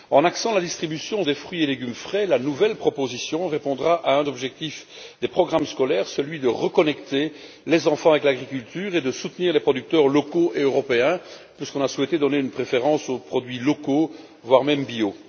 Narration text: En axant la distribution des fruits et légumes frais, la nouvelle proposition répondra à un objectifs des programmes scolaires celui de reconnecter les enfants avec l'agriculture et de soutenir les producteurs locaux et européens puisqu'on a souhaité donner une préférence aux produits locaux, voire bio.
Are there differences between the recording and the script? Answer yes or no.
no